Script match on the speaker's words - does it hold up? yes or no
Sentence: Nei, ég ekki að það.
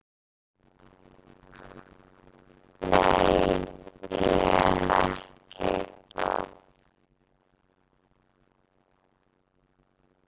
yes